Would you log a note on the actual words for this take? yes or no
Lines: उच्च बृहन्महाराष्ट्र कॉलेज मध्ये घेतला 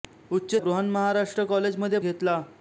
no